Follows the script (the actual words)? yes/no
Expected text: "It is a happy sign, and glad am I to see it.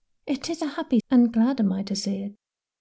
no